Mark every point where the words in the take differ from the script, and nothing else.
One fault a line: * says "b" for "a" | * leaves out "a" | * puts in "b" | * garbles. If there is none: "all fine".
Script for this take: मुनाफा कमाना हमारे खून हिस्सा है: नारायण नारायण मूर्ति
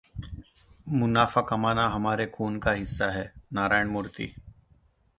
* puts in "का"
* leaves out "नारायण"